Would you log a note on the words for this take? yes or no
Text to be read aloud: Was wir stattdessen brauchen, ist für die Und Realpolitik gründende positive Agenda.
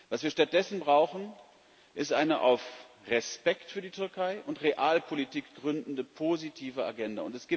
yes